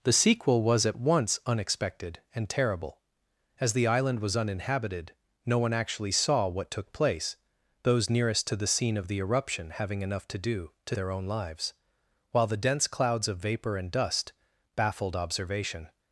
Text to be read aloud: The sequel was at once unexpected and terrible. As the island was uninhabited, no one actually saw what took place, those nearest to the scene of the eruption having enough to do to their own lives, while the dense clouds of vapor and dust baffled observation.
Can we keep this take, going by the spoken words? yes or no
yes